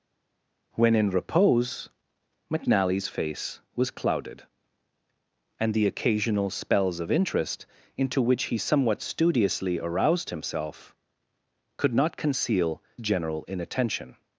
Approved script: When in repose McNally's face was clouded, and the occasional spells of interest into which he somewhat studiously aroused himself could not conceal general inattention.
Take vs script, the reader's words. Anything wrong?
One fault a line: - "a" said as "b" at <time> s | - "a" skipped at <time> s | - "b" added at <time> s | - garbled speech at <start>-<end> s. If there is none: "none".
none